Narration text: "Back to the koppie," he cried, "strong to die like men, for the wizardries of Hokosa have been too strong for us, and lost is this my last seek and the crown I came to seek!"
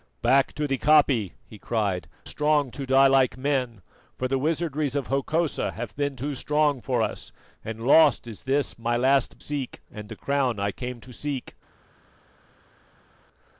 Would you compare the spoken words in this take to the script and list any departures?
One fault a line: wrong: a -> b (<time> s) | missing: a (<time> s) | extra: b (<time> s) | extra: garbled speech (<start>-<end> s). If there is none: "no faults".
no faults